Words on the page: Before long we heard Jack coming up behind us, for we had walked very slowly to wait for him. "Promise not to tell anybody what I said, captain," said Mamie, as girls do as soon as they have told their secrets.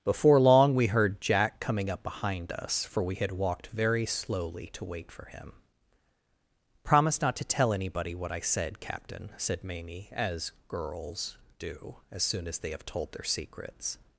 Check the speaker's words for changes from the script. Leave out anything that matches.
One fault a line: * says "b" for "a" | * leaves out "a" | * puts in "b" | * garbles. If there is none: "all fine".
all fine